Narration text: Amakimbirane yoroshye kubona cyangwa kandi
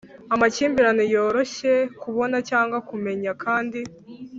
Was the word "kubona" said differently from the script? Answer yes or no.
no